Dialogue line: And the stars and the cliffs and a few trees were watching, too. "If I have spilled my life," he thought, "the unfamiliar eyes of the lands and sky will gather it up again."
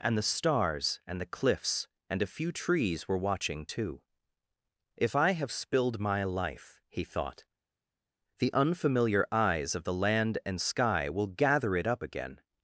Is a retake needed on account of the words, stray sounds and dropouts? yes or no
yes